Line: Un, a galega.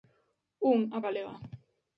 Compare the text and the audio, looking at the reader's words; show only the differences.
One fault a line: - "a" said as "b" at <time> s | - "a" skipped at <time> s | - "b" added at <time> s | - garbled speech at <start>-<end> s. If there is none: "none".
none